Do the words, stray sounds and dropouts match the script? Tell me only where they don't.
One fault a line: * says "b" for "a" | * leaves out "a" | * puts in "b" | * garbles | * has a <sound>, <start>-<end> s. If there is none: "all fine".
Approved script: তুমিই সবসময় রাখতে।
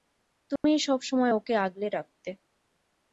* has a dropout, 0.6-0.6 s
* puts in "ওকে আগলে"